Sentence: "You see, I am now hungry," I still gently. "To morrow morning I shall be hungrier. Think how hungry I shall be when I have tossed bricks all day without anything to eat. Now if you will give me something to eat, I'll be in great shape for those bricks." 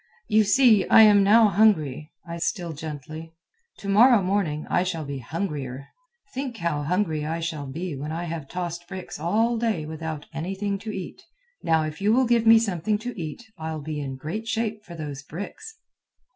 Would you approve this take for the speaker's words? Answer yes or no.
yes